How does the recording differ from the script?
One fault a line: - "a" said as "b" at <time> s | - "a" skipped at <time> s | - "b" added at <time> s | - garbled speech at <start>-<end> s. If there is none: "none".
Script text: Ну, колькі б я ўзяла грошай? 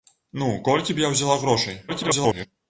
- garbled speech at 1.9-2.5 s